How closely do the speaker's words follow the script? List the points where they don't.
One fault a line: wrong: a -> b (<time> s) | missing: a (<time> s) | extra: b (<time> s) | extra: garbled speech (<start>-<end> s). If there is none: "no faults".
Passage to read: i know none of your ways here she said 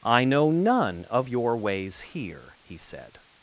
wrong: she -> he (2.6 s)